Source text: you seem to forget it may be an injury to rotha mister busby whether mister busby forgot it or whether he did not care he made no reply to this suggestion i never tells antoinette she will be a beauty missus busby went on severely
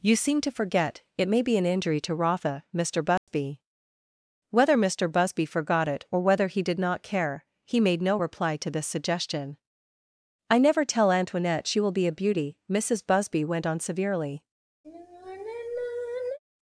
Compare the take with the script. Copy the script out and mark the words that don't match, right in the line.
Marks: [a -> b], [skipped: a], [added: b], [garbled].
you seem to forget it may be an injury to rotha mister busby whether mister busby forgot it or whether he did not care he made no reply to this suggestion i never [tells -> tell] antoinette she will be a beauty missus busby went on severely